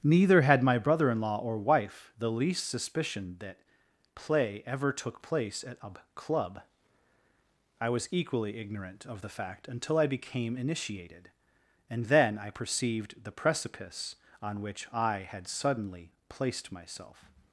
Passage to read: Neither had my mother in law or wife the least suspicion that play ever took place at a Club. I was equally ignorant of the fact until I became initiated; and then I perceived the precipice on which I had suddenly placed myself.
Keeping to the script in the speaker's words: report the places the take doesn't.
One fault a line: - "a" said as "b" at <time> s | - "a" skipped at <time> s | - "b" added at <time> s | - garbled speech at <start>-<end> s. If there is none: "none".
- "mother" said as "brother" at 0.8 s